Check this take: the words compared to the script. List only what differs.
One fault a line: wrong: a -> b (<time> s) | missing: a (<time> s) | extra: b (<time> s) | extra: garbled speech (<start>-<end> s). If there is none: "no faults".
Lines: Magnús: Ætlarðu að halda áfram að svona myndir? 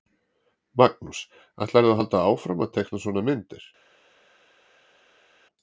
extra: teikna (2.8 s)